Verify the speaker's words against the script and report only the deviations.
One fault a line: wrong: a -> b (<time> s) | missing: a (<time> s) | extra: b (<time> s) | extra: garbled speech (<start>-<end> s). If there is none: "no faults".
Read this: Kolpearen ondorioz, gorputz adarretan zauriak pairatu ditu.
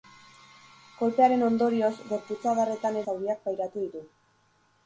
no faults